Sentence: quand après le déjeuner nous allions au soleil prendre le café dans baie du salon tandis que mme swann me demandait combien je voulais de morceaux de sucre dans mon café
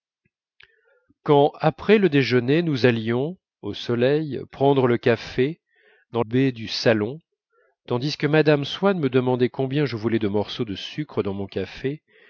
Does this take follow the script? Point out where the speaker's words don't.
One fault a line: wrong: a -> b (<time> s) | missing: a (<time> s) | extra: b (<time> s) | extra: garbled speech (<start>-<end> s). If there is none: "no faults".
no faults